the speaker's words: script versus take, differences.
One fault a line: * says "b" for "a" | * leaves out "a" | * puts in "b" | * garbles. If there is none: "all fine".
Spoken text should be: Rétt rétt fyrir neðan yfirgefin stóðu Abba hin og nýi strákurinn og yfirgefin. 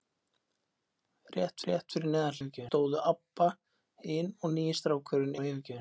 all fine